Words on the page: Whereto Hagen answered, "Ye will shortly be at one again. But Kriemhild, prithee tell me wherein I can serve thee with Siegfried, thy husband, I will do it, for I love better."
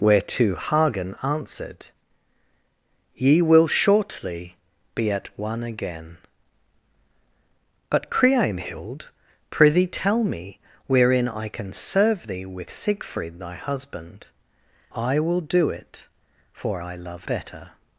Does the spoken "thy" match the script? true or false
true